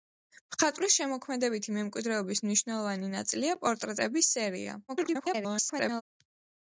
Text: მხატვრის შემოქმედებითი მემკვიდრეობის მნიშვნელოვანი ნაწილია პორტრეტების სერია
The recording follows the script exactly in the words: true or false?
false